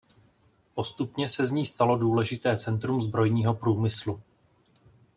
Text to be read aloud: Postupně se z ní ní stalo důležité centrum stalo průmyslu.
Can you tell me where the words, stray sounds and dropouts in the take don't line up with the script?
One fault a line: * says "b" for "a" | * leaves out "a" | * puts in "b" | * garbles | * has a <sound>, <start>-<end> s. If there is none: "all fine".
* leaves out "ní"
* says "zbrojního" for "stalo"